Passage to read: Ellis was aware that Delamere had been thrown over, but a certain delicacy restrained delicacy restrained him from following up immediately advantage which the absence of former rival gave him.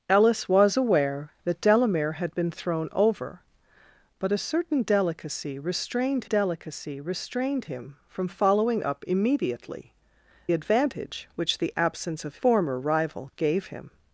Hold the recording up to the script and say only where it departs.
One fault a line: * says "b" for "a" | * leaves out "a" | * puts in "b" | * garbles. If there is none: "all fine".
all fine